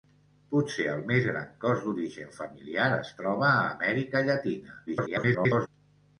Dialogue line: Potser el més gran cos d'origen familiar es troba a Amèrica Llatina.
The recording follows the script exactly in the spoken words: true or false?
false